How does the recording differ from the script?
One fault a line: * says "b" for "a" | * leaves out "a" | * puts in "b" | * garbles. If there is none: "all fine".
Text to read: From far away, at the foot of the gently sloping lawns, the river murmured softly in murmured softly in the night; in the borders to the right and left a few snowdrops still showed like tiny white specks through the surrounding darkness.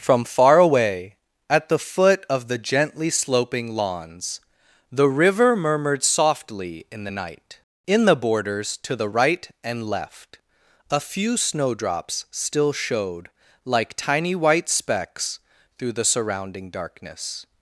* leaves out "murmured softly in"